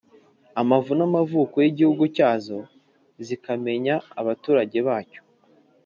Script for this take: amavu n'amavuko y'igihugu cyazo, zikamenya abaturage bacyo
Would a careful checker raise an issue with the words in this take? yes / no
no